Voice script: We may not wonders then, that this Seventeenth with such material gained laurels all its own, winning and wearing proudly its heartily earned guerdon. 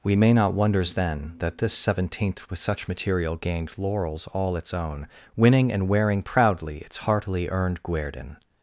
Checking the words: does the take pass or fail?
pass